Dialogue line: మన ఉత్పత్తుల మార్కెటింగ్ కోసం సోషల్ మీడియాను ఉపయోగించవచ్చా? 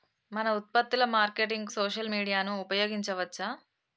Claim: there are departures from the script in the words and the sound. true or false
true